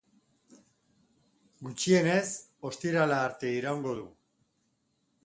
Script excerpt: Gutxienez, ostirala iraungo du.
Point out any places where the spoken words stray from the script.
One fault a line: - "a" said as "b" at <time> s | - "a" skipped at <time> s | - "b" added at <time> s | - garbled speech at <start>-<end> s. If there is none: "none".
- "arte" added at 3.3 s